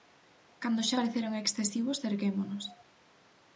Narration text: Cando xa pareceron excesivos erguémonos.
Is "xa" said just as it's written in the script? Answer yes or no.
yes